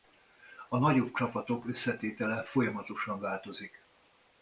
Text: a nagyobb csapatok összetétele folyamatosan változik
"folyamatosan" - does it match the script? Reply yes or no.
yes